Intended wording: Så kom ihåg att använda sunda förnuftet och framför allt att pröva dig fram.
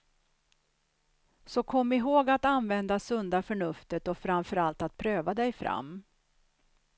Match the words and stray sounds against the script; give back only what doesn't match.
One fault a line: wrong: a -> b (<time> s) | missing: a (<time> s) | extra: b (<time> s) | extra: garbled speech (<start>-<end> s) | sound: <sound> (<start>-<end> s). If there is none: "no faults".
no faults